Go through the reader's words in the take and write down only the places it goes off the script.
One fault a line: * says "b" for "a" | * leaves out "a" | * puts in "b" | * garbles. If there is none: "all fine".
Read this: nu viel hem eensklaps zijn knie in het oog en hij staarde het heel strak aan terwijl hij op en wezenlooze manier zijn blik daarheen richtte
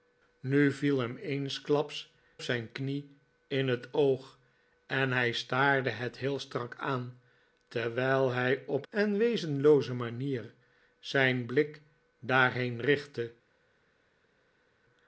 all fine